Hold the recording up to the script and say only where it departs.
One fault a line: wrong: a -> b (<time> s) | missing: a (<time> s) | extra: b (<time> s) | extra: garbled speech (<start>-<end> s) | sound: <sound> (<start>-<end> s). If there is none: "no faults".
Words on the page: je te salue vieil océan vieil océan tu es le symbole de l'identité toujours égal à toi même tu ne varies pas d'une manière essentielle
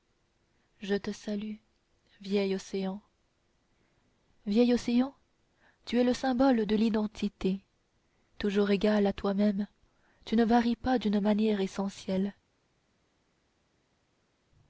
no faults